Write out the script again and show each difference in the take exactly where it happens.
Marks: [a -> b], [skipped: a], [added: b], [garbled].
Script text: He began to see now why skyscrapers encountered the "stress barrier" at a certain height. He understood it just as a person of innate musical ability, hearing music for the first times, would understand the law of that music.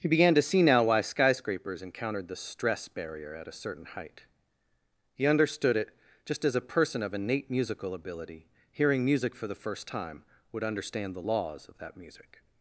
He began to see now why skyscrapers encountered the "stress barrier" at a certain height. He understood it just as a person of innate musical ability, hearing music for the first [times, -> time] would understand the [law -> laws] of that music.